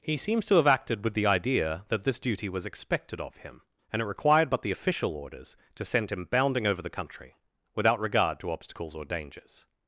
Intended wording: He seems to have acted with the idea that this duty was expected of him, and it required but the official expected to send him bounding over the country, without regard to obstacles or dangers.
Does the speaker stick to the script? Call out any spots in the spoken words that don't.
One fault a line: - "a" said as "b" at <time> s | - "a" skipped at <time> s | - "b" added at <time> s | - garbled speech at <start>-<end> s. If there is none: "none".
- "expected" said as "orders" at 5.1 s